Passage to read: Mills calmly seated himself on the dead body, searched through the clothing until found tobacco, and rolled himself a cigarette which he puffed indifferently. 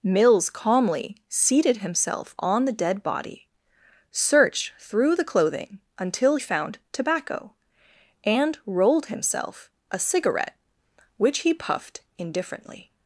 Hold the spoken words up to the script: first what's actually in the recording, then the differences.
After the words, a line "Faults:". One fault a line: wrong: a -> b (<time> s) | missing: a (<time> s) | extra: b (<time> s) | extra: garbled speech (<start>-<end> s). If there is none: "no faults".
Mills calmly seated himself on the dead body, searched through the clothing until found tobacco, and rolled himself a cigarette which he puffed indifferently.
Faults:
no faults